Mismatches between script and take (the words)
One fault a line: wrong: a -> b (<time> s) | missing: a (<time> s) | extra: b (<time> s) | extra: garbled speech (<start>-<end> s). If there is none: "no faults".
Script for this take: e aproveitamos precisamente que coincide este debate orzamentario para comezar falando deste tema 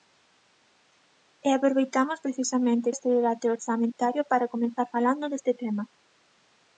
missing: que coincide (2.9 s)